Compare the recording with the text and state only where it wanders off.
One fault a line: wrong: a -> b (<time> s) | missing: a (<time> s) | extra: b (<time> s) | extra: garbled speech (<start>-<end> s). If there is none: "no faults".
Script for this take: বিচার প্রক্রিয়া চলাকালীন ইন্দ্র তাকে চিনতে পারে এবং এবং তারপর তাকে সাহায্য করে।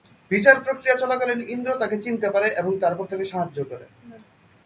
missing: এবং (2.7 s)